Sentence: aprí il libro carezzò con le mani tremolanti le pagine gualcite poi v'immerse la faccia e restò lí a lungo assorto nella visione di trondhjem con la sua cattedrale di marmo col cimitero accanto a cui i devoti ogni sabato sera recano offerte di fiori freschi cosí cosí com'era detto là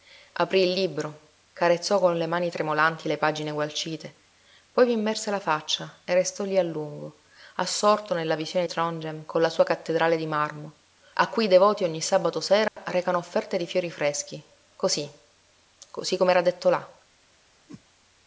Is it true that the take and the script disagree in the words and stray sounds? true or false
true